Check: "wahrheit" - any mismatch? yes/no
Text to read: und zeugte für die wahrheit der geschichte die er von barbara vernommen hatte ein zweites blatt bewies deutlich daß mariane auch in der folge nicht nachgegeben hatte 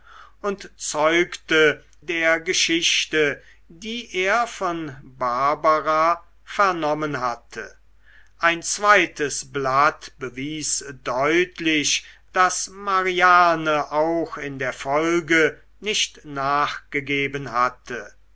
yes